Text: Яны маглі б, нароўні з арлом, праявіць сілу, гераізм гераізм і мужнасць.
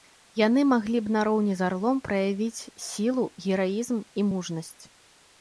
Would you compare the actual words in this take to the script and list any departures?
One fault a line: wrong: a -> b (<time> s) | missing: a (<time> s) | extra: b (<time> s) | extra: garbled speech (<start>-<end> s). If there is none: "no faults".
missing: гераізм (4.0 s)